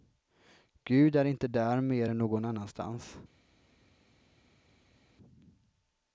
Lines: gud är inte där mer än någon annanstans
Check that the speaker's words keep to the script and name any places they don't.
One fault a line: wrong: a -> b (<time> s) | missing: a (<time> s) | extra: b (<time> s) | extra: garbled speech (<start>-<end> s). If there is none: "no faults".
no faults